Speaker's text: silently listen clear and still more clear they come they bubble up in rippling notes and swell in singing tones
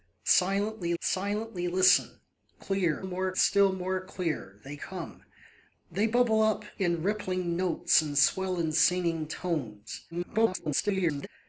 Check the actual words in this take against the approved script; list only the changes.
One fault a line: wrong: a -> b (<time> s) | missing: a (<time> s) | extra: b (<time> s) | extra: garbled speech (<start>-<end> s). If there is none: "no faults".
extra: silently (1.0 s)
wrong: and -> more (3.0 s)
extra: garbled speech (10.1-11.3 s)